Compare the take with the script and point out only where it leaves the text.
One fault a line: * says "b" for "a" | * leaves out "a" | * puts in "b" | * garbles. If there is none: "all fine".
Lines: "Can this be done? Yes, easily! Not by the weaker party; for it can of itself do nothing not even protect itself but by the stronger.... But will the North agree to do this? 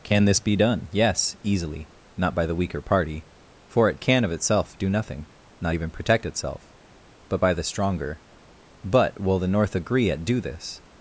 * says "at" for "to"